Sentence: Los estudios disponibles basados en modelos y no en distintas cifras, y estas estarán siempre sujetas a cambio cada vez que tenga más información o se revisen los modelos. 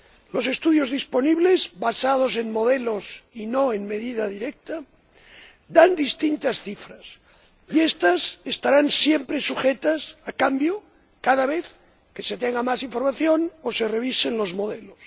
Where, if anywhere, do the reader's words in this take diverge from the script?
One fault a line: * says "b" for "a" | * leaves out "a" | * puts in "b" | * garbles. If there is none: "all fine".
* puts in "medida directa dan"
* puts in "se"